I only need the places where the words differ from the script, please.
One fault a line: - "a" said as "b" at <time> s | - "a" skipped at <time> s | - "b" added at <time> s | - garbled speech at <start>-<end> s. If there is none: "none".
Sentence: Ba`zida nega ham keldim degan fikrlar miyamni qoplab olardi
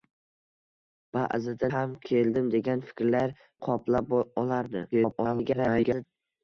- "nega" skipped at 1.7 s
- "miyamni" skipped at 3.3 s
- garbled speech at 4.9-6.1 s